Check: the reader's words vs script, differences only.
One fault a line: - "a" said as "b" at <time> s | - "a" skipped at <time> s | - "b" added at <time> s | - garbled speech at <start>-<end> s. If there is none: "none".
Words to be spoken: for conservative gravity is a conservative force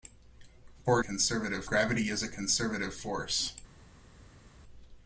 none